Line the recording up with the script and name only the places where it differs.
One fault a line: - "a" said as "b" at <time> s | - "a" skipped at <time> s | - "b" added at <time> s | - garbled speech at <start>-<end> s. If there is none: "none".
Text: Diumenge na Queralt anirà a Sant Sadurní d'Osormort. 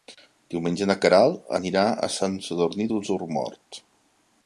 none